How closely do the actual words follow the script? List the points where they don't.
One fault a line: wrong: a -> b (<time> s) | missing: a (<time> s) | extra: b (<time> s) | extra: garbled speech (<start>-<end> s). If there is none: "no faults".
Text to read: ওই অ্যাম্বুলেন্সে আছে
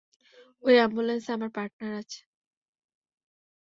extra: আমার পার্টনার (1.4 s)